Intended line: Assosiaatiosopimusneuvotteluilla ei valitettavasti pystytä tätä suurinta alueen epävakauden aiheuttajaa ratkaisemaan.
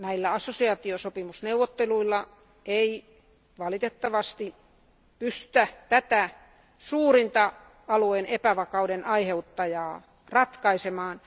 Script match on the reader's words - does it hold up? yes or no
yes